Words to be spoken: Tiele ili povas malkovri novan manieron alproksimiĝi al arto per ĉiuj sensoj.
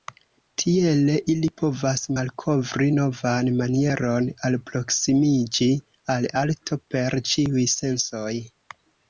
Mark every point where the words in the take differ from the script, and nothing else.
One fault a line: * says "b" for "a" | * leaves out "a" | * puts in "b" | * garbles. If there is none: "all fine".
all fine